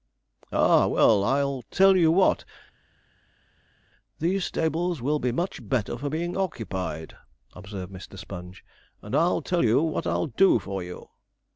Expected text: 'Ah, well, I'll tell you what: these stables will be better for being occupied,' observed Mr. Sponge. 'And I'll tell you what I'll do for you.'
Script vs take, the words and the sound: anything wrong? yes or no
yes